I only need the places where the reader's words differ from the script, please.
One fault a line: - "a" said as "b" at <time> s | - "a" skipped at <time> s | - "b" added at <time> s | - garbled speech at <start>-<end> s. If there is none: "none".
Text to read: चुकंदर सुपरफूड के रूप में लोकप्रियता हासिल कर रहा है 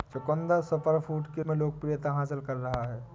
- "रूप" skipped at 1.4 s